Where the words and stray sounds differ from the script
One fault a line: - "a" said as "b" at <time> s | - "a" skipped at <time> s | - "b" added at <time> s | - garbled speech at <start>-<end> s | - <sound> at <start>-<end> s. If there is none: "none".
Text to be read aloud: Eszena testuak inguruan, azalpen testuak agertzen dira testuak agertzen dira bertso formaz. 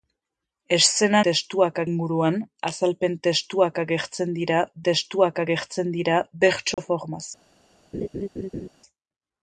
- dropout at 6.7-6.8 s
- laugh at 7.9-8.7 s